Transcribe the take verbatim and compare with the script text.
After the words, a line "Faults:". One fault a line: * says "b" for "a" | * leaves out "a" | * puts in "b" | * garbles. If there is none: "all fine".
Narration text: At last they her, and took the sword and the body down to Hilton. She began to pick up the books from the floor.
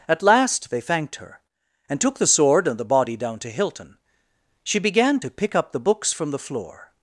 At last they thanked her, and took the sword and the body down to Hilton. She began to pick up the books from the floor.
Faults:
* puts in "thanked"